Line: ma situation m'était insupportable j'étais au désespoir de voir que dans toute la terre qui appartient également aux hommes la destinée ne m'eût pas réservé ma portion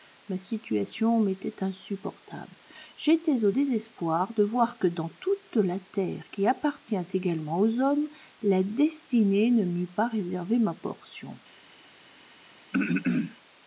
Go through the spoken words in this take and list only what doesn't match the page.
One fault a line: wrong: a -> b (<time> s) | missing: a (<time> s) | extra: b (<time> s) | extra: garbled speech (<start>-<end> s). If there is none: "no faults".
no faults